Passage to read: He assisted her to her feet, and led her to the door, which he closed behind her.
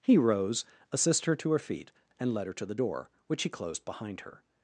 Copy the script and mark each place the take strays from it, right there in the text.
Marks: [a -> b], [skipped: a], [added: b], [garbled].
He [added: rose] assisted her to her feet, and led her to the door, which he closed behind her.